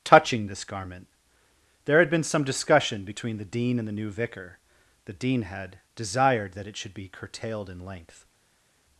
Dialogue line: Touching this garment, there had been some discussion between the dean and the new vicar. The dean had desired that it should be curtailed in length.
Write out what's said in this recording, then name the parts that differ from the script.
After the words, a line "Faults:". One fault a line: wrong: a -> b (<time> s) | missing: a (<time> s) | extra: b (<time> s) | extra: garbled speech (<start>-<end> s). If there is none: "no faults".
Touching this garment, there had been some discussion between the dean and the new vicar. The dean had desired that it should be curtailed in length.
Faults:
no faults